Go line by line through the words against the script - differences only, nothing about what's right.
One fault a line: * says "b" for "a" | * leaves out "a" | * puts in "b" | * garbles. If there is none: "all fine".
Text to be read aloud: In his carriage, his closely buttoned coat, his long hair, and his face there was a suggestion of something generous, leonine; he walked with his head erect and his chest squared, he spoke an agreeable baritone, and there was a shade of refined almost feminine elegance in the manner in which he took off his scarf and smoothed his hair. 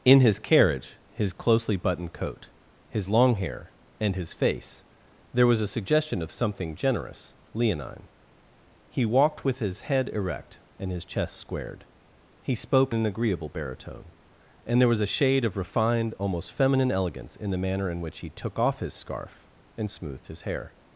all fine